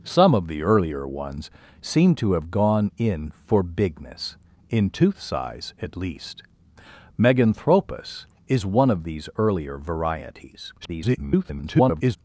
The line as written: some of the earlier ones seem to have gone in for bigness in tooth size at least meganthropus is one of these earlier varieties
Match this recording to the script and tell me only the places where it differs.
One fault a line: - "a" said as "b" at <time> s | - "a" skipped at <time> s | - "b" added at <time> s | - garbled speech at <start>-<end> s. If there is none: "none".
- garbled speech at 10.8-12.2 s